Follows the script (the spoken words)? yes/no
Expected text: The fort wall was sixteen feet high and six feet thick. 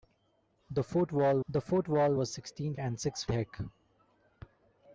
no